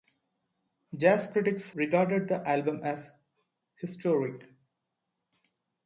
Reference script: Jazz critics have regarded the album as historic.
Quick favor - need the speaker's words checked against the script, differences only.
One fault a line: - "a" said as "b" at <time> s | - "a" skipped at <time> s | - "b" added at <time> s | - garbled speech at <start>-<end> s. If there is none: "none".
- "have" skipped at 1.7 s